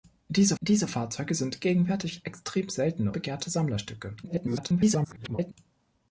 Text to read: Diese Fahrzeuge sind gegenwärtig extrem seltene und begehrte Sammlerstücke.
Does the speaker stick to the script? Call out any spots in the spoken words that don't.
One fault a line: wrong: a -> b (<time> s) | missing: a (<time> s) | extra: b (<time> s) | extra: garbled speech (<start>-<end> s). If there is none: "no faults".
extra: diese (0.6 s)
missing: und (3.1 s)
extra: garbled speech (4.2-5.5 s)